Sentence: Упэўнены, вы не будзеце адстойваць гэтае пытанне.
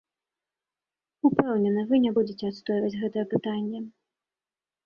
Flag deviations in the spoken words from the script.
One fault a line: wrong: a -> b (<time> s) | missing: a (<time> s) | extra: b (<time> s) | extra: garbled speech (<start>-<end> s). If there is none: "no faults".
no faults